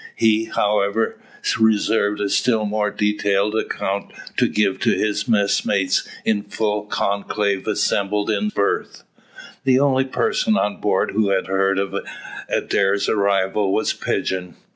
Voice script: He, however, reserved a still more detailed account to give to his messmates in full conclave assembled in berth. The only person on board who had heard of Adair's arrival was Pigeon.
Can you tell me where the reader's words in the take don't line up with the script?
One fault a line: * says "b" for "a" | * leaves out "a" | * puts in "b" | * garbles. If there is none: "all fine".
all fine